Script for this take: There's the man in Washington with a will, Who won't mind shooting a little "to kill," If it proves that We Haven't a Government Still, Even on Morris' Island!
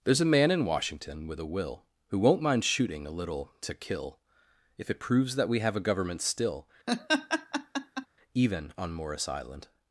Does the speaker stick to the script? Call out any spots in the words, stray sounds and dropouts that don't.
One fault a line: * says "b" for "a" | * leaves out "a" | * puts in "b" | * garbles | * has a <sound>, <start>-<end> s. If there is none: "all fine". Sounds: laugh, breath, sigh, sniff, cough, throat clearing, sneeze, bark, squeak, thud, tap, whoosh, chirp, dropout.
* says "a" for "the"
* says "Have" for "Haven't"
* has a laugh, 6.9-8.1 s